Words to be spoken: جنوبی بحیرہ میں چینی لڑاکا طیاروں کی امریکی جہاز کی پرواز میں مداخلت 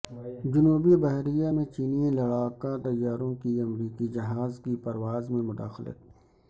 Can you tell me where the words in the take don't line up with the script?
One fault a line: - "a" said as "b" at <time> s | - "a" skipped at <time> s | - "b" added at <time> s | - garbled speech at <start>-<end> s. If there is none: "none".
none